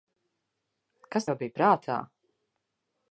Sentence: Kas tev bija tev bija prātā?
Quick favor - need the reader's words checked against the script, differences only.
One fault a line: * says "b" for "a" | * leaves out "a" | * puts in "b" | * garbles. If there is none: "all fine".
* leaves out "tev bija"